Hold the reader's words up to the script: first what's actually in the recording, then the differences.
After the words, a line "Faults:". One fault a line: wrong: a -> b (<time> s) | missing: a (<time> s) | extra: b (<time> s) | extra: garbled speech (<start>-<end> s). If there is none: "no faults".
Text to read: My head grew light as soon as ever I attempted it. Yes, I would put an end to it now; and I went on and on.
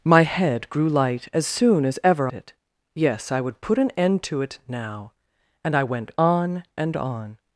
My head grew light as soon as ever it. Yes, I would put an end to it now; and I went on and on.
Faults:
missing: I attempted (2.3 s)